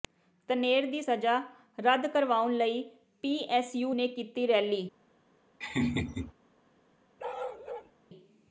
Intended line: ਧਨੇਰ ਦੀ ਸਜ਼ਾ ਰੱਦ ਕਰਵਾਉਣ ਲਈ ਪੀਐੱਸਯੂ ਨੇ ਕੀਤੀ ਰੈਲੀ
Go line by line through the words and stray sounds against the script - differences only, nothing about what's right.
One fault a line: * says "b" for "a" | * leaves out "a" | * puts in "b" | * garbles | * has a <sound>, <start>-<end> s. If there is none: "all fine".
* has a laugh, 5.6-6.3 s
* has a bark, 7.2-7.9 s